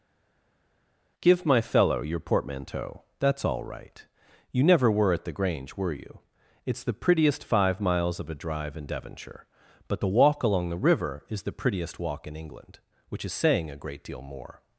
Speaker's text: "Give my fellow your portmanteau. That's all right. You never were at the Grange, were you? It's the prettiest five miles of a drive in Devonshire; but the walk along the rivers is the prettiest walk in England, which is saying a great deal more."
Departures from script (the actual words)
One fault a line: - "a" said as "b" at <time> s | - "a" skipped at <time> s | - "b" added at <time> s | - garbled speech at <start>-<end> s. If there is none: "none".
- "rivers" said as "river" at 10.8 s